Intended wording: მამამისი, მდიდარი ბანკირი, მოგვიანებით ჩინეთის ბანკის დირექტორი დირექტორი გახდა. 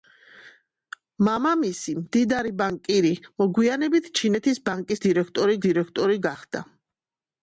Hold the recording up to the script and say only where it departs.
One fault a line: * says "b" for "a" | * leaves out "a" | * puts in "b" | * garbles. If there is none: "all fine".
all fine